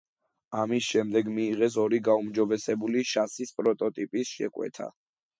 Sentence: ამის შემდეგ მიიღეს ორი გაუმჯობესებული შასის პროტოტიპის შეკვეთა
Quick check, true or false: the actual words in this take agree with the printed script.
true